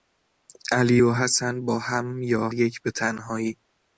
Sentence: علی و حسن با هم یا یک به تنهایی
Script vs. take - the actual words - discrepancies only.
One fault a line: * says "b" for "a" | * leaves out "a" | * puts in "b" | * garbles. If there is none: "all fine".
all fine